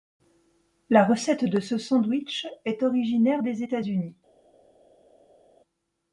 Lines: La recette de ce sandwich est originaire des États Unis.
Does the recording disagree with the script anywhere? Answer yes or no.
no